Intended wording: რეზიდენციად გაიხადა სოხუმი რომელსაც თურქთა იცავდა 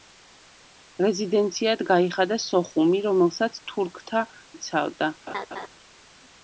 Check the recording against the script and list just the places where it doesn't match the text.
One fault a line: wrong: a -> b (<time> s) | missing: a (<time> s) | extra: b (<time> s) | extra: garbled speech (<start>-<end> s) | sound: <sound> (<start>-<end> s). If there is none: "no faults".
sound: laugh (5.3-5.7 s)